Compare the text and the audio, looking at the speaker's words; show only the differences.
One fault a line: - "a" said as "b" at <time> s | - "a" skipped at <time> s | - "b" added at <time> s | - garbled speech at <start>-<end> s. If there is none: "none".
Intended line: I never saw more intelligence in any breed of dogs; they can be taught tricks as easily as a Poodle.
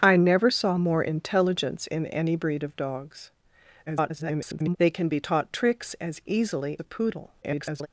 - garbled speech at 3.9-4.8 s
- "as" skipped at 6.8 s
- garbled speech at 7.4-7.9 s